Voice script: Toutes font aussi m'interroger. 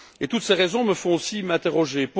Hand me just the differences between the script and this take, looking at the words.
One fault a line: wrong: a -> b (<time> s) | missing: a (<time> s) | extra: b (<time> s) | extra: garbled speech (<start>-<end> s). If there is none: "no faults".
extra: ces raisons me (0.4 s)